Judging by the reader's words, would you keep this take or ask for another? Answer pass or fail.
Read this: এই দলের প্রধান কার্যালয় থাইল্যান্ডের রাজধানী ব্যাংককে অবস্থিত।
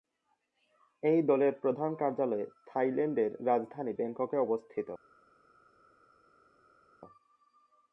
pass